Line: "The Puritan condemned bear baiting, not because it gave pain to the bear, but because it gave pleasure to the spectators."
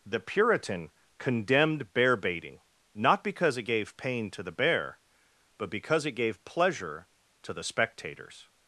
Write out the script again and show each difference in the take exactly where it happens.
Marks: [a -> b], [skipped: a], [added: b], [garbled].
"The Puritan condemned bear baiting, not because it gave pain to the bear, but because it gave pleasure to the spectators."